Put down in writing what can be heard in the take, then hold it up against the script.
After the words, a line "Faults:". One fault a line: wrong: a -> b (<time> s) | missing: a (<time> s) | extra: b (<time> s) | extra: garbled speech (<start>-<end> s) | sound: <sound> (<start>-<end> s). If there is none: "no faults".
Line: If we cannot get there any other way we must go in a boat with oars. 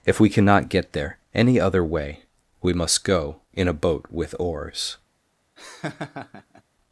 If we cannot get there any other way we must go in a boat with oars.
Faults:
sound: laugh (5.6-6.6 s)